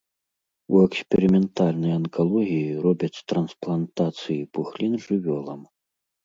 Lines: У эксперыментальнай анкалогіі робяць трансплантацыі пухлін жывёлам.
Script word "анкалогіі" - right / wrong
right